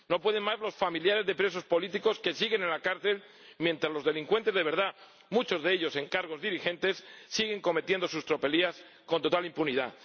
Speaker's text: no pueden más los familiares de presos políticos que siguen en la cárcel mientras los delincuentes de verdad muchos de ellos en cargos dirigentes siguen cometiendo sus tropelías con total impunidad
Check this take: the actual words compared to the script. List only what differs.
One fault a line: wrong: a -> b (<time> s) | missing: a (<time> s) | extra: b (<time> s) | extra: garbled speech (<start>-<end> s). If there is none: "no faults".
no faults